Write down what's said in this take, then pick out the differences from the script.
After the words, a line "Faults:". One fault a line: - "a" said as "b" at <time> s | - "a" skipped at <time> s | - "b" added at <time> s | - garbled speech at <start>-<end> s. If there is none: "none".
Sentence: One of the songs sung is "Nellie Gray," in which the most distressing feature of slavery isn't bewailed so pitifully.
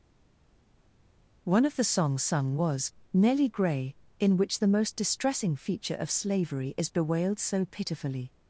One of the songs sung was "Nellie Gray," in which the most distressing feature of slavery is bewailed so pitifully.
Faults:
- "is" said as "was" at 2.5 s
- "isn't" said as "is" at 6.8 s